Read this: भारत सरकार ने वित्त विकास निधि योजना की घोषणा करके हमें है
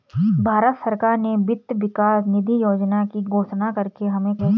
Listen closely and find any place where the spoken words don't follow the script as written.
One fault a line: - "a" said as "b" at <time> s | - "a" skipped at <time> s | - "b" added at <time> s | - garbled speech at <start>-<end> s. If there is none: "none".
none